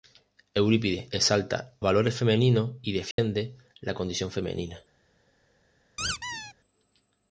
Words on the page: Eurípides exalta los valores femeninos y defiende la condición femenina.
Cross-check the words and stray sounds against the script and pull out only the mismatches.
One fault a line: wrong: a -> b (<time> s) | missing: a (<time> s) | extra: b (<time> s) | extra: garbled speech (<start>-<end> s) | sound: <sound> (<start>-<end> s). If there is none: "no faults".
missing: los (1.8 s)
sound: dropout (3.1-3.2 s)
sound: squeak (6.0-6.5 s)